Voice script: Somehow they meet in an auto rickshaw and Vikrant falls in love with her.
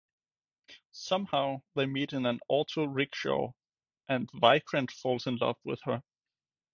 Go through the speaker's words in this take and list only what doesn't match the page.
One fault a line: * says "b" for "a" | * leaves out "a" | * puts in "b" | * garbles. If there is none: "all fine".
all fine